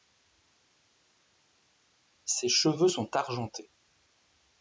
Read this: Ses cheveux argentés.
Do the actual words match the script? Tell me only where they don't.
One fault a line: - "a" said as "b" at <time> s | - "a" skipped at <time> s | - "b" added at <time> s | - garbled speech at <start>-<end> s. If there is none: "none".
- "sont" added at 2.9 s